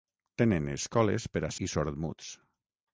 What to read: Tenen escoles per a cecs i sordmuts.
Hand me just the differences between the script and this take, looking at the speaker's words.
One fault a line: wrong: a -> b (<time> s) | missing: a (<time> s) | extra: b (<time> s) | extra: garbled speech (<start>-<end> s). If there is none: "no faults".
missing: cecs (1.5 s)